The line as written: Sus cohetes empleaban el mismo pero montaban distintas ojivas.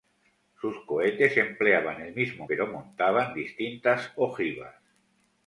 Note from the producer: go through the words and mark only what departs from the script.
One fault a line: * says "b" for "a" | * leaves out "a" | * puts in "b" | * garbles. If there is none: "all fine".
all fine